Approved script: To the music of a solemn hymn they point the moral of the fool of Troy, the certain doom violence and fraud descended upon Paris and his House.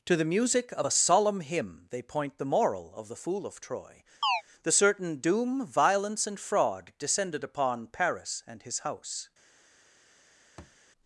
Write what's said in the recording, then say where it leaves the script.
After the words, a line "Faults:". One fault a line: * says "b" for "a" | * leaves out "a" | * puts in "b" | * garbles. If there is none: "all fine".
To the music of a solemn hymn they point the moral of the fool of Troy, the certain doom violence and fraud descended upon Paris and his House.
Faults:
all fine